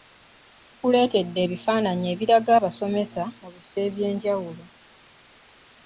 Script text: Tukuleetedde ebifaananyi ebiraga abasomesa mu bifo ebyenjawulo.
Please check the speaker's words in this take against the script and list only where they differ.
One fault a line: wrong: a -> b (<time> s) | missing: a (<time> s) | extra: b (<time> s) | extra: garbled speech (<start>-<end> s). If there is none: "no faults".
no faults